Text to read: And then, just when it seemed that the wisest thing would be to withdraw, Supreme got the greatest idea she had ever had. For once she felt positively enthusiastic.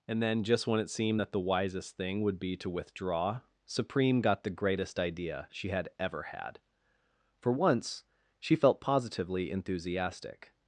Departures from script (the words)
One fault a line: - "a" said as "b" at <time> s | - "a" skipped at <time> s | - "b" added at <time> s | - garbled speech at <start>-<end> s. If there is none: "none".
none